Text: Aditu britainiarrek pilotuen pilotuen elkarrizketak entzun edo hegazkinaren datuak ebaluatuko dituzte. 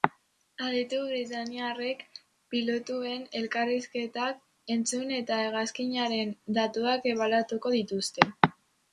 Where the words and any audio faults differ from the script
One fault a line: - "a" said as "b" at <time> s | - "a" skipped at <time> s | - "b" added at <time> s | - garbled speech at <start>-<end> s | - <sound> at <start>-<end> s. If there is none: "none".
- "pilotuen" skipped at 3.3 s
- "edo" said as "eta" at 5.2 s